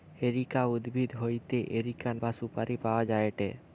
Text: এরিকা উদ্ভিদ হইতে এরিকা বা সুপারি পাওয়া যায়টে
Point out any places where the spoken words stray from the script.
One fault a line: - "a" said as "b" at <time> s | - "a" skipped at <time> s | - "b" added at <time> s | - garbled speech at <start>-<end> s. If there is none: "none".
none